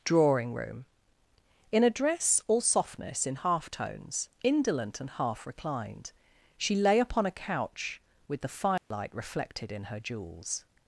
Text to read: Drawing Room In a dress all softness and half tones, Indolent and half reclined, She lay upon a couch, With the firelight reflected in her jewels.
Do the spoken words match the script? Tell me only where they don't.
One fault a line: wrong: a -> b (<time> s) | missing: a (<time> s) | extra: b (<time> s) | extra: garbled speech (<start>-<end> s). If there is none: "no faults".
wrong: and -> in (3.2 s)